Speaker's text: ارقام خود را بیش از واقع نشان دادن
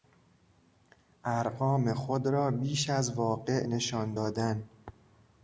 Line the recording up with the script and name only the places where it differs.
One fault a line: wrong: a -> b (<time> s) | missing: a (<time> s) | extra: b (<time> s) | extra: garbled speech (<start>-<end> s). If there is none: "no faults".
no faults